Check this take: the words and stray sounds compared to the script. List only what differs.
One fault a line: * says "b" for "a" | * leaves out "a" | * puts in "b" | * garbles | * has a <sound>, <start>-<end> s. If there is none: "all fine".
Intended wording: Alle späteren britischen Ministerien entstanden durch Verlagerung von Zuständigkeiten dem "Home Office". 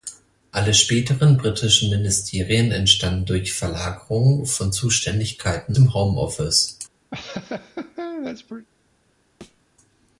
* has a laugh, 7.1-8.7 s
* has a thud, 9.4-9.6 s